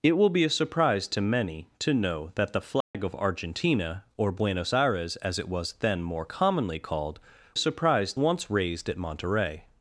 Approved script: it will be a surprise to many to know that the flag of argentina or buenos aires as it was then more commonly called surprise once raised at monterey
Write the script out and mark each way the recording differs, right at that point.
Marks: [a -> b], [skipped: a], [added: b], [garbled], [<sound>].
it will be a surprise to many to know that the flag [dropout] of argentina or buenos aires as it was then more commonly called surprise once raised at monterey